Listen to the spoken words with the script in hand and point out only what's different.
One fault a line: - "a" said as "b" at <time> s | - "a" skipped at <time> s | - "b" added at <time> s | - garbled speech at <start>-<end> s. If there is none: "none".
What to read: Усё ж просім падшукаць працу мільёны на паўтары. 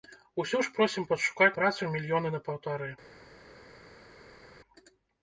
none